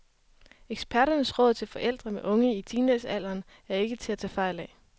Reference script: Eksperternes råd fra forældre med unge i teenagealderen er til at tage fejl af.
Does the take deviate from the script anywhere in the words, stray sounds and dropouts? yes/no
yes